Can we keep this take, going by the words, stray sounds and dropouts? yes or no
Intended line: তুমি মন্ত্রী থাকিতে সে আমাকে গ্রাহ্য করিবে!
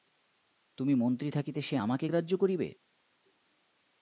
yes